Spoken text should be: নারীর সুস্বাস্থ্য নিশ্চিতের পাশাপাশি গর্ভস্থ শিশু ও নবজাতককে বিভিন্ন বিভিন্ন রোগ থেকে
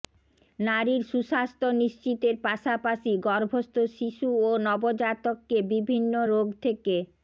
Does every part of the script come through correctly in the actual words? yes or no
no